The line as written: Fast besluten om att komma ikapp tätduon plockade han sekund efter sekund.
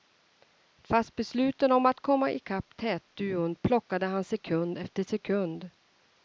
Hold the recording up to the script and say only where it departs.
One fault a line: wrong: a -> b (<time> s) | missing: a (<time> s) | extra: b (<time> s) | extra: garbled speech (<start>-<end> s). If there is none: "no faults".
no faults